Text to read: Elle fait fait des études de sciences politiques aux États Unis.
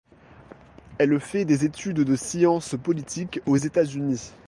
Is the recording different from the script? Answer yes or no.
yes